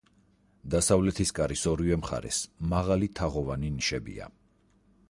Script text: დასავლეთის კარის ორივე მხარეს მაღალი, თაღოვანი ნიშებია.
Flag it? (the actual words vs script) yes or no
no